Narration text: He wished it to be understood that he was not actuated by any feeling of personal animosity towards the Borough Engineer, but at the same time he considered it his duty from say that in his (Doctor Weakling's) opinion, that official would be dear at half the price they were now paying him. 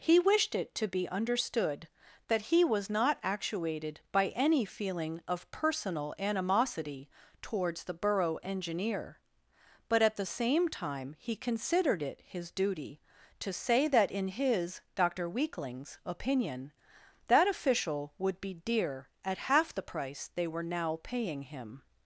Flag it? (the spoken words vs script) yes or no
yes